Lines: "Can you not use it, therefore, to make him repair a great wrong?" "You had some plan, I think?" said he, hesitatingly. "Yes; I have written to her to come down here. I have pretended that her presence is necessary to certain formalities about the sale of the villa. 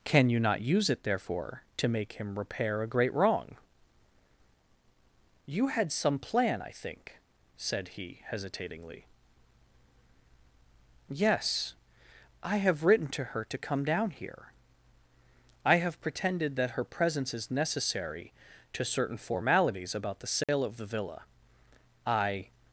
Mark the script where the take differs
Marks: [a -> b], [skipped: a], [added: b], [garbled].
"Can you not use it, therefore, to make him repair a great wrong?" "You had some plan, I think?" said he, hesitatingly. "Yes; I have written to her to come down here. I have pretended that her presence is necessary to certain formalities about the sale of the villa. [added: I]